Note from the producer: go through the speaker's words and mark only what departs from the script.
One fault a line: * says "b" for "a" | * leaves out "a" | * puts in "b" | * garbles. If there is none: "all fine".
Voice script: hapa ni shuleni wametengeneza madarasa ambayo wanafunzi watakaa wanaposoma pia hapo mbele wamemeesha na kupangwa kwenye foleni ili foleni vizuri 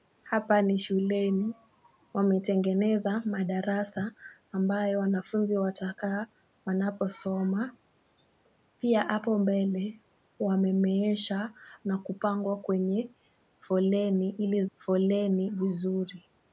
all fine